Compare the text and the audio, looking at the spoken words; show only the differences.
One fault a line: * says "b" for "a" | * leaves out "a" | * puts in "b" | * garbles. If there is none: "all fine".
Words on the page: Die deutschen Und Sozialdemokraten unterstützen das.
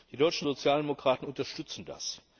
all fine